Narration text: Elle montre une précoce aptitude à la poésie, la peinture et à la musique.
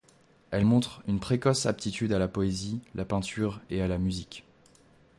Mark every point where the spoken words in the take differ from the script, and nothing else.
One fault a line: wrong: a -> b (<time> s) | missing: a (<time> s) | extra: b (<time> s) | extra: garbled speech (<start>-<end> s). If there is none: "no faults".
no faults